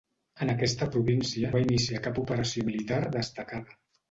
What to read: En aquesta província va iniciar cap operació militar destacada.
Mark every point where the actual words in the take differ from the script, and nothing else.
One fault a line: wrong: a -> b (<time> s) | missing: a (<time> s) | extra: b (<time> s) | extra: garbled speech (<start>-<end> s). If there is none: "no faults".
no faults